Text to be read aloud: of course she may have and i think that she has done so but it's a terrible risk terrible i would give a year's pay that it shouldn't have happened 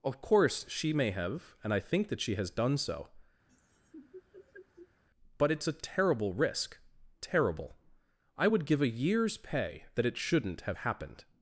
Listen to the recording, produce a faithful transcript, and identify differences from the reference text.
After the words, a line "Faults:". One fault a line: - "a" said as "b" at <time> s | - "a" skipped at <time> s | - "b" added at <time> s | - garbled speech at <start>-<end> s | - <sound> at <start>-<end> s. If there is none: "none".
of course she may have and i think that she has done so but it's a terrible risk terrible i would give a year's pay that it shouldn't have happened
Faults:
- laugh at 3.5-5.0 s